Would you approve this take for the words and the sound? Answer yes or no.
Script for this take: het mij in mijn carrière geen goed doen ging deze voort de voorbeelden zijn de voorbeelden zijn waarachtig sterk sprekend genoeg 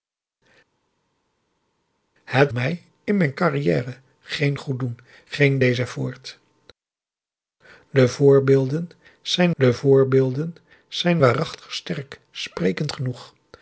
yes